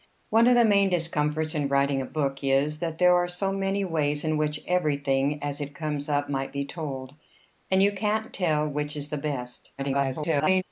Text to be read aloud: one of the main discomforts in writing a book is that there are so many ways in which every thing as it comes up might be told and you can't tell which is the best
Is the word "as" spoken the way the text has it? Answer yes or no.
yes